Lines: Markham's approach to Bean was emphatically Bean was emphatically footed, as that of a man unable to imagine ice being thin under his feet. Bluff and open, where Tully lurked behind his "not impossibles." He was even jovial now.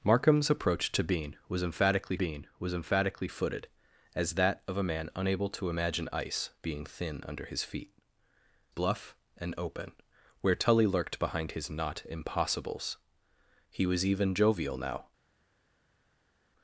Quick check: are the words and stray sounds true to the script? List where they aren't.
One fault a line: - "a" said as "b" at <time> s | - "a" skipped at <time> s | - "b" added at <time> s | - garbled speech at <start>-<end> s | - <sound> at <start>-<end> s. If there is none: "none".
none